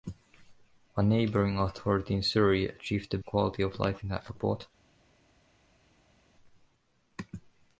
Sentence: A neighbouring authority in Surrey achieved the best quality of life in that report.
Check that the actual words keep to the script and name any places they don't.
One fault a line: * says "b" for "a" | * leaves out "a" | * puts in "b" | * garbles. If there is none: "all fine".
* leaves out "best"